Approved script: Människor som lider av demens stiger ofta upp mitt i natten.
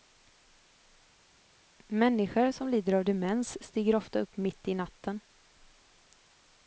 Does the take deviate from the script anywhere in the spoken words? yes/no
no